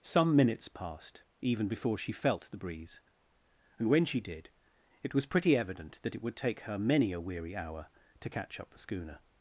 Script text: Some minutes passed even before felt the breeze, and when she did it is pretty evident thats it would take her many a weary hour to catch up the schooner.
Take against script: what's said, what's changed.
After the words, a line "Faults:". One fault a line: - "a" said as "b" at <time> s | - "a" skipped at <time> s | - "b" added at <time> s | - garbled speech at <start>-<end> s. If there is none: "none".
Some minutes passed even before she felt the breeze, and when she did it was pretty evident that it would take her many a weary hour to catch up the schooner.
Faults:
- "she" added at 2.0 s
- "is" said as "was" at 5.1 s
- "thats" said as "that" at 6.0 s